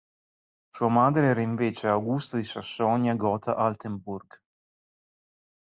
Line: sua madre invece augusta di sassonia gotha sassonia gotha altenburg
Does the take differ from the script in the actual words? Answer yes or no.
yes